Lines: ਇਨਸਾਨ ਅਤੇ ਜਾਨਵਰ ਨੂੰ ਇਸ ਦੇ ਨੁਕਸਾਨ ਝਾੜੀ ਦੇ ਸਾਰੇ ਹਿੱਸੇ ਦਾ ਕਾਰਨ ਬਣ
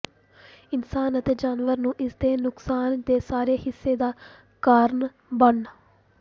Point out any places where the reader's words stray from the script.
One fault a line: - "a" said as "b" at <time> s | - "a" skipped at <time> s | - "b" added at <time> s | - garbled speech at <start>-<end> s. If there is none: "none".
- "ਝਾੜੀ" skipped at 3.0 s